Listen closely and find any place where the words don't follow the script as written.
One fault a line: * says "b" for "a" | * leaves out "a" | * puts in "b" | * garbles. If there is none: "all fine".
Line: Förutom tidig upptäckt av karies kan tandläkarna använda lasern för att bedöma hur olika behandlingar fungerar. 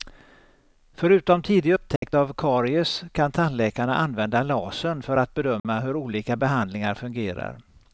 all fine